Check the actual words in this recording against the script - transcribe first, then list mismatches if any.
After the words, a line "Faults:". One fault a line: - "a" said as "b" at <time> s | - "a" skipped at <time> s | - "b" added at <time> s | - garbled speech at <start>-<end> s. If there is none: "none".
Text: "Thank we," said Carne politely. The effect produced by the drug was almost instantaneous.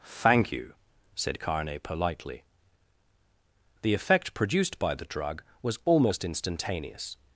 "Thank you," said Carne politely. The effect produced by the drug was almost instantaneous.
Faults:
- "we" said as "you" at 0.5 s